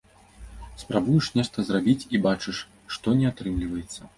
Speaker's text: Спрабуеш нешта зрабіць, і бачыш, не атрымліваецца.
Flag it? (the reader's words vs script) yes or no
yes